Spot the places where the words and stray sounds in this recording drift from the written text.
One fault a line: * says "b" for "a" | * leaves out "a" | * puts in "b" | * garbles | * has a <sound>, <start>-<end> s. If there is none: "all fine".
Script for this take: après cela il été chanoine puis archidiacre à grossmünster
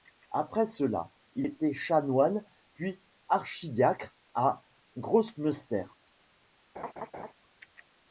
* has a laugh, 6.8-7.3 s